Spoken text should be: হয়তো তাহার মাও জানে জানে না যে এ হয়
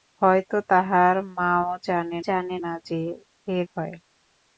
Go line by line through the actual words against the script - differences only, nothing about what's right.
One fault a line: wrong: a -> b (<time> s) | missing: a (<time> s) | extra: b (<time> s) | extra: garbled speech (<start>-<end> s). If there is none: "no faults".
no faults